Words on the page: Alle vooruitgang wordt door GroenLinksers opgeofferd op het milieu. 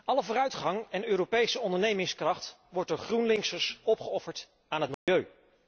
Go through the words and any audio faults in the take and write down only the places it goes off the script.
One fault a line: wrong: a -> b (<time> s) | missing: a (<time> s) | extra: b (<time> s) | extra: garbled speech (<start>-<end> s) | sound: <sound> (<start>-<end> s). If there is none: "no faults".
extra: en Europese ondernemingskracht (0.9 s)
wrong: op -> aan (4.7 s)
sound: dropout (4.9-5.1 s)